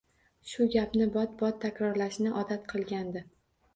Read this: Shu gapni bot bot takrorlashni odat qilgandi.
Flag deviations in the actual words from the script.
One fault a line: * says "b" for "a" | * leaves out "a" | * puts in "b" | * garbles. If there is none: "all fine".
all fine